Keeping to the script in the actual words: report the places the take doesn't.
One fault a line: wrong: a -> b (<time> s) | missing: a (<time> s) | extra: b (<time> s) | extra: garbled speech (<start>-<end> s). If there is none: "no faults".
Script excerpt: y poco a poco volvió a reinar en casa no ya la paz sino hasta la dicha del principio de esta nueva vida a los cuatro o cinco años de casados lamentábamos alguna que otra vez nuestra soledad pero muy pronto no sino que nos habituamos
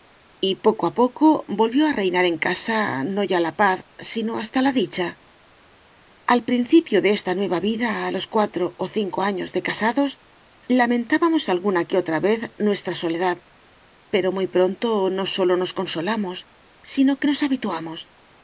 wrong: del -> al (6.2 s)
extra: sólo nos consolamos (15.3 s)